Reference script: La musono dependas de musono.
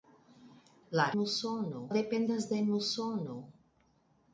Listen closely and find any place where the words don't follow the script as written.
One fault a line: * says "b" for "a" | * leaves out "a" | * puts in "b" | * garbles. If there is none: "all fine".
all fine